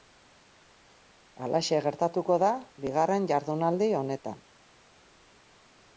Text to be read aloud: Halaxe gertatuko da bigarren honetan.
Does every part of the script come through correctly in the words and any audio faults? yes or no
no